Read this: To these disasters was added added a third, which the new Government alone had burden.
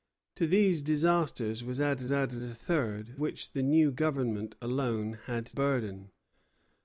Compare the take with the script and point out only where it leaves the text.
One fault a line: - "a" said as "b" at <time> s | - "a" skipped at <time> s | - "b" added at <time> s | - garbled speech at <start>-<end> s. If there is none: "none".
none